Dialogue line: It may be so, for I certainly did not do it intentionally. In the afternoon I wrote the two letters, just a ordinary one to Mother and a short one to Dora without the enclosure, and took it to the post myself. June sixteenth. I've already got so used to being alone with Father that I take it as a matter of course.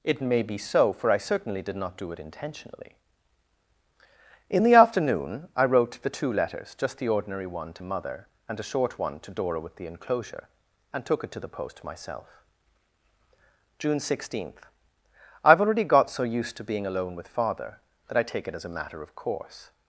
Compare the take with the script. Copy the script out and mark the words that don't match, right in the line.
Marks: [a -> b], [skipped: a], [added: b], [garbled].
It may be so, for I certainly did not do it intentionally. In the afternoon I wrote the two letters, just [a -> the] ordinary one to Mother and a short one to Dora [without -> with] the enclosure, and took it to the post myself. June sixteenth. I've already got so used to being alone with Father that I take it as a matter of course.